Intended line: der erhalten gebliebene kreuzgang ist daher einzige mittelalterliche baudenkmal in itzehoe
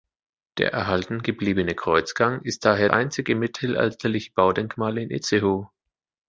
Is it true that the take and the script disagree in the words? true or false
false